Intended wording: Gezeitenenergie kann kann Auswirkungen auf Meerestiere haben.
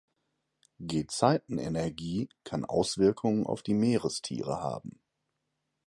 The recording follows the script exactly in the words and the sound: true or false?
false